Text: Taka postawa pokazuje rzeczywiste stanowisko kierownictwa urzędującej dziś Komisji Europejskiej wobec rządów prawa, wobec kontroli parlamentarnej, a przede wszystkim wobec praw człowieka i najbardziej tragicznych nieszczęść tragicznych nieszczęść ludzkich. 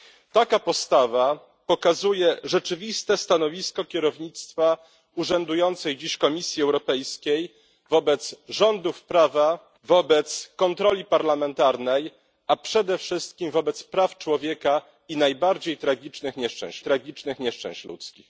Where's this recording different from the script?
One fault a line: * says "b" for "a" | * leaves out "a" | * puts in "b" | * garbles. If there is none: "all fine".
all fine